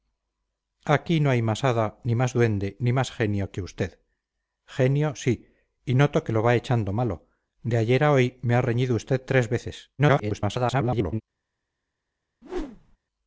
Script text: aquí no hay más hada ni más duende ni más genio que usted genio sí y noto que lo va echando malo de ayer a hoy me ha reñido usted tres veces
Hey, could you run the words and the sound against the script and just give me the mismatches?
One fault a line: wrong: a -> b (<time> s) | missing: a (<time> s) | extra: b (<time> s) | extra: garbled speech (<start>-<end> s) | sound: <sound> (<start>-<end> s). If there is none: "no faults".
extra: garbled speech (10.0-11.2 s)
sound: whoosh (12.4-13.0 s)